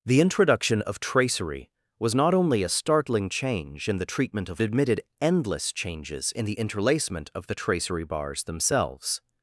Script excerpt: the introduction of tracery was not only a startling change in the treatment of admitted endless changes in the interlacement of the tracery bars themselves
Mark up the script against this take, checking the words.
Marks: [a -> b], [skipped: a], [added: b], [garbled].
the introduction of tracery was not only a startling change in the treatment of admitted endless changes in the interlacement of the tracery bars themselves